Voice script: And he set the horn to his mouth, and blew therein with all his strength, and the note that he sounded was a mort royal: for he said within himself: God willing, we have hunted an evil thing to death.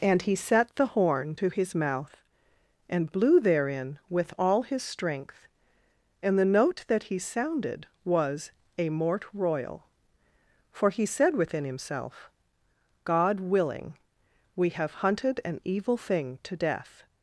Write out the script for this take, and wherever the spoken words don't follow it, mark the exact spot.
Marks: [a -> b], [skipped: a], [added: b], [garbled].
And he set the horn to his mouth, and blew therein with all his strength, and the note that he sounded was a mort royal: for he said within himself: God willing, we have hunted an evil thing to death.